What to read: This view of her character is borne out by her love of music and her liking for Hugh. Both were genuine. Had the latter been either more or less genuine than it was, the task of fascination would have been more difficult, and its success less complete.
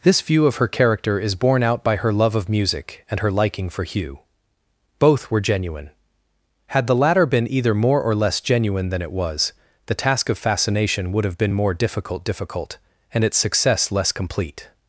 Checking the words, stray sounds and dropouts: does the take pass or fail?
fail